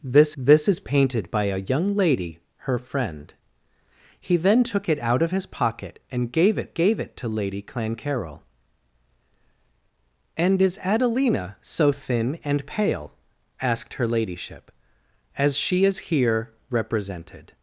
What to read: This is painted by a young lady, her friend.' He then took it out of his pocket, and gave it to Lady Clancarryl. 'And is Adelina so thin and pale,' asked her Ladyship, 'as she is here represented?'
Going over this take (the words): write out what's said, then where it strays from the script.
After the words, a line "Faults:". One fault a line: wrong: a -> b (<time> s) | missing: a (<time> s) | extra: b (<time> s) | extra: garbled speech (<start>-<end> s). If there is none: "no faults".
This this is painted by a young lady, her friend.' He then took it out of his pocket, and gave it gave it to Lady Clancarryl. 'And is Adelina so thin and pale,' asked her Ladyship, 'as she is here represented?'
Faults:
extra: this (0.4 s)
extra: gave it (6.7 s)